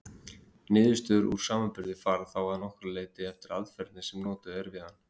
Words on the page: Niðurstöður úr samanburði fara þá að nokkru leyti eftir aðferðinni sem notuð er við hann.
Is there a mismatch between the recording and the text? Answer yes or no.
no